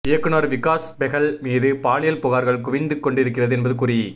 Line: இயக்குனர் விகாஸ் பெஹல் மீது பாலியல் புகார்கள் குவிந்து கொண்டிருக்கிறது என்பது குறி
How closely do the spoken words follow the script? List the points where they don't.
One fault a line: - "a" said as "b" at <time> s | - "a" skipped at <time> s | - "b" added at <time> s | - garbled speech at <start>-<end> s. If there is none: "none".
none